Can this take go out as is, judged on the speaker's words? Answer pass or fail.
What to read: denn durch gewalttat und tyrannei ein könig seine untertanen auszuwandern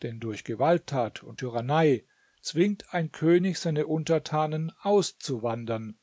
fail